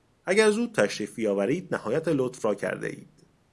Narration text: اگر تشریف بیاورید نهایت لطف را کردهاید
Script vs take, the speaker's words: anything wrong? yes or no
yes